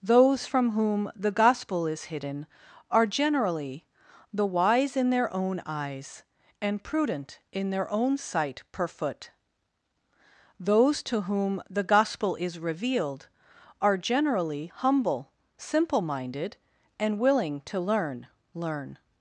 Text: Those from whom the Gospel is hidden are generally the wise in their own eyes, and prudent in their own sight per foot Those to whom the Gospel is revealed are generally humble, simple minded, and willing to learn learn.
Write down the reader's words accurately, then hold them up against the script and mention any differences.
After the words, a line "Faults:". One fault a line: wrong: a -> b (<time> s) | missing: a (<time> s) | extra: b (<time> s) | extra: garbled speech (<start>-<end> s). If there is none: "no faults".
Those from whom the Gospel is hidden are generally the wise in their own eyes, and prudent in their own sight per foot Those to whom the Gospel is revealed are generally humble, simple minded, and willing to learn learn.
Faults:
no faults